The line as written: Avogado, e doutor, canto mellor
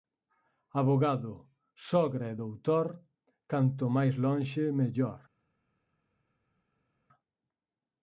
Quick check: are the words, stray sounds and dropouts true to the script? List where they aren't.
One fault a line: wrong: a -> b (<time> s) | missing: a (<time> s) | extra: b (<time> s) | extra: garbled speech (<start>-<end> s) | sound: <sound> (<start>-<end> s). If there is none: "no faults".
extra: sogra (1.9 s)
extra: máis lonxe (4.0 s)